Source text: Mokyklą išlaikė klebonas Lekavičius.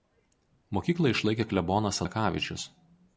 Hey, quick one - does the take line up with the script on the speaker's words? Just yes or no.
yes